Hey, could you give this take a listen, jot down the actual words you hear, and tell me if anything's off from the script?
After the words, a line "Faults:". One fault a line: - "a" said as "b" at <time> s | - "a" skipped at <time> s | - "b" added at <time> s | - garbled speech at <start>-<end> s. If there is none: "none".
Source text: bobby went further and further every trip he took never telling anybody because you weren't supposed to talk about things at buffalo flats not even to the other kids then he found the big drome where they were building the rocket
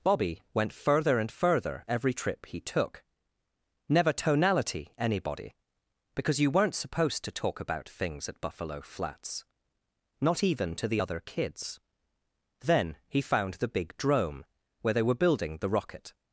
bobby went further and further every trip he took never tonality anybody because you weren't supposed to talk about things at buffalo flats not even to the other kids then he found the big drome where they were building the rocket
Faults:
- "telling" said as "tonality" at 4.1 s